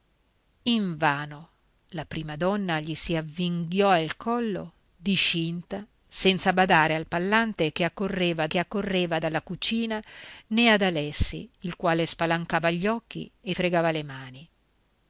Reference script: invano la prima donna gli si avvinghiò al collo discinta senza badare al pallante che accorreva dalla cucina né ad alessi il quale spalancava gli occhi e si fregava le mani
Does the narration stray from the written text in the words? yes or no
yes